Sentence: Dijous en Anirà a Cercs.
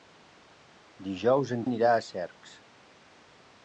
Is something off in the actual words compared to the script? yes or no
no